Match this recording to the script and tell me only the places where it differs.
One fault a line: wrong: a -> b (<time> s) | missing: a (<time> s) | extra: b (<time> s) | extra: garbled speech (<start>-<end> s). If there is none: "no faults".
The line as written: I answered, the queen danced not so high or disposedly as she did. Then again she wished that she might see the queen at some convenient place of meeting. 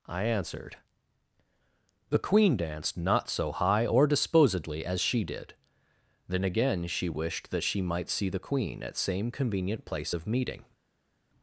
wrong: some -> same (9.0 s)